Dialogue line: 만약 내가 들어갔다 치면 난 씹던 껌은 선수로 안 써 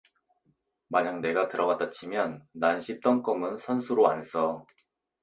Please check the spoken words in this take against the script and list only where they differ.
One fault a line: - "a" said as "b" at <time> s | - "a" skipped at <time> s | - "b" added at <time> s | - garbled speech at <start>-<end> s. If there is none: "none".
none